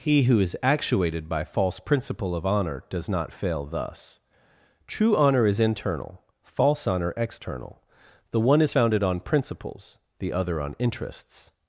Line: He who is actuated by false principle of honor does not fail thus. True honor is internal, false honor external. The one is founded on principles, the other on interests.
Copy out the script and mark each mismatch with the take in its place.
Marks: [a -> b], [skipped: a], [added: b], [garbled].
He who is actuated by false principle of honor does not fail thus. True honor is internal, false honor external. The one is founded on principles, the other on interests.